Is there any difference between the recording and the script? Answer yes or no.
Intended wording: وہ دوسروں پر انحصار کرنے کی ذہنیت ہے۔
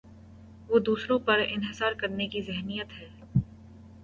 no